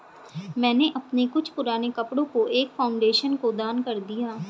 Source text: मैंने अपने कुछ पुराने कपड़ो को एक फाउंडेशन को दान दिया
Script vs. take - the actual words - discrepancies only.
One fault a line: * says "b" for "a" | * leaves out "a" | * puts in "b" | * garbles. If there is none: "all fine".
* puts in "कर"